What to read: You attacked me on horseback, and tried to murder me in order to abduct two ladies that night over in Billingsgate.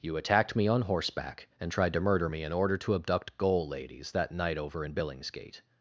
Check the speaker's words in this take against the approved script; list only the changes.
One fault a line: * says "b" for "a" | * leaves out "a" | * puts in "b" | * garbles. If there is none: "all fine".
* says "goal" for "two"